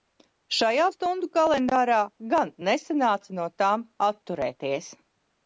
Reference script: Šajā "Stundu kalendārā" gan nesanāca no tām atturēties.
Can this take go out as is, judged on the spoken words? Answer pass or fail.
pass